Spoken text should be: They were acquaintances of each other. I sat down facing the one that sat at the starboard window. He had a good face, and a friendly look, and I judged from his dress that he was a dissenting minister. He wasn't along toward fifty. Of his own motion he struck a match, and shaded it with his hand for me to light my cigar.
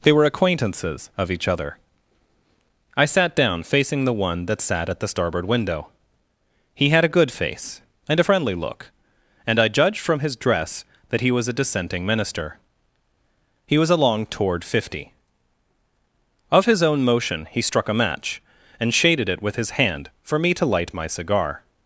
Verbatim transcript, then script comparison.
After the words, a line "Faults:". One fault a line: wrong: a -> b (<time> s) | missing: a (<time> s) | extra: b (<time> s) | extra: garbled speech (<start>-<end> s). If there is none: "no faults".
They were acquaintances of each other. I sat down facing the one that sat at the starboard window. He had a good face, and a friendly look, and I judged from his dress that he was a dissenting minister. He was along toward fifty. Of his own motion he struck a match, and shaded it with his hand for me to light my cigar.
Faults:
wrong: wasn't -> was (13.8 s)